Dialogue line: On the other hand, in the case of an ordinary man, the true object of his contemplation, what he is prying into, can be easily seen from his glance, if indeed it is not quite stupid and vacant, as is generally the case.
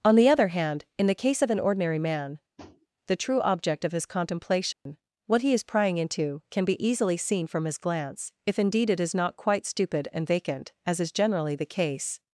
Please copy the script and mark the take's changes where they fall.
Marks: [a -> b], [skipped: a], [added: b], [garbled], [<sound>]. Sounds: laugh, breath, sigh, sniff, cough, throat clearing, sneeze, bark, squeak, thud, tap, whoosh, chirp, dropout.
On the other hand, in the case of an ordinary man, [tap] the true object of his contemplation, [dropout] what he is prying into, can be easily seen from his glance, if indeed it is not quite stupid and vacant, as is generally the case.